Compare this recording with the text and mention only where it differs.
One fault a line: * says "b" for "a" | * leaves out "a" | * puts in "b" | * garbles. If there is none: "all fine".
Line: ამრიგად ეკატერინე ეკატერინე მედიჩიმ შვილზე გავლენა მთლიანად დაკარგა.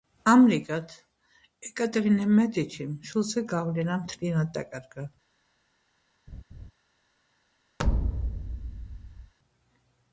* leaves out "ეკატერინე"